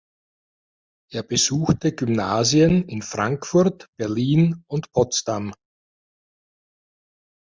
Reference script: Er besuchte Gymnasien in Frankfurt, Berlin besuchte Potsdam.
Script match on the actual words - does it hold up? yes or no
no